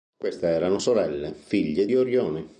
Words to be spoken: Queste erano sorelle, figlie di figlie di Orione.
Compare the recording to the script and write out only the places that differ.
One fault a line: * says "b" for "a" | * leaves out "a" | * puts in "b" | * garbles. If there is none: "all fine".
* leaves out "figlie di"